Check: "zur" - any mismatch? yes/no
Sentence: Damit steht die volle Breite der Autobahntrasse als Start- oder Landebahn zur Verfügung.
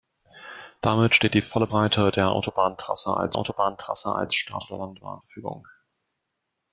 yes